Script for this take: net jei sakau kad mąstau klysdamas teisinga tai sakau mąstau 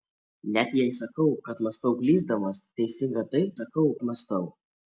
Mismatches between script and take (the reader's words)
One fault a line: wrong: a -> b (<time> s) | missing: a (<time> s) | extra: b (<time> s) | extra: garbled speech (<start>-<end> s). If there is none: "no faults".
no faults